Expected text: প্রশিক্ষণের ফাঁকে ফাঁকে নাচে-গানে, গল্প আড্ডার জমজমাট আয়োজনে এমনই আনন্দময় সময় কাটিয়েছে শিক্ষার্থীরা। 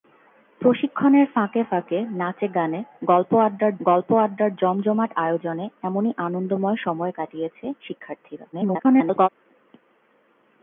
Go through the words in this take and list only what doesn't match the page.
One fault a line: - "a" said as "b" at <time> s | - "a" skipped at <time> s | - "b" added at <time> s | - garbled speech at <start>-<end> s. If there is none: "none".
- "গল্প আড্ডার" added at 3.8 s
- garbled speech at 8.5-9.3 s